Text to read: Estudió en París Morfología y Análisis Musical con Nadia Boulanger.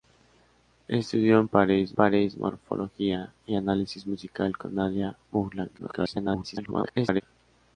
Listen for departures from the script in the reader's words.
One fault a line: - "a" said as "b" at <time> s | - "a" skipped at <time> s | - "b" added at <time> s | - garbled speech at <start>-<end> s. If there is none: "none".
- "París" added at 1.9 s
- garbled speech at 5.8-7.2 s